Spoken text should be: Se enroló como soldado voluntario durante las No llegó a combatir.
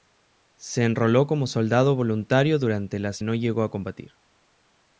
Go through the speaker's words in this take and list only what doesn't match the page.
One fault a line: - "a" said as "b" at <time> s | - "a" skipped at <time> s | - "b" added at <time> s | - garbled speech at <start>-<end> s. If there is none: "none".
none